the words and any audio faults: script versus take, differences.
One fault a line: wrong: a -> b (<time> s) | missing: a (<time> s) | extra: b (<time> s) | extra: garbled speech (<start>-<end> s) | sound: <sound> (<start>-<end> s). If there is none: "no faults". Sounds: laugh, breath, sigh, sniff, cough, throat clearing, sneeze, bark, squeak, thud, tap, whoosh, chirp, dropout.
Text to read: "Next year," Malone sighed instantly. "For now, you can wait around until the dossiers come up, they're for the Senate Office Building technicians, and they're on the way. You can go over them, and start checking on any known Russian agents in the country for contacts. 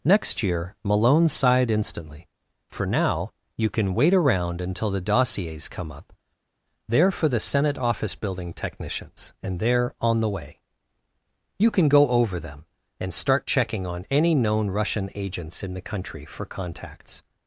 no faults